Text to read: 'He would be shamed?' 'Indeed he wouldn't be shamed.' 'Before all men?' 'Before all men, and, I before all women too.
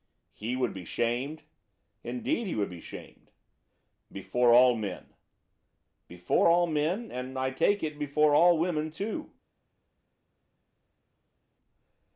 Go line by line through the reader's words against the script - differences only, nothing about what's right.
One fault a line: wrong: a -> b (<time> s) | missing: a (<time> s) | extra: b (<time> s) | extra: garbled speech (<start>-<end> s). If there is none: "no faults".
wrong: wouldn't -> would (2.6 s)
extra: take it (7.5 s)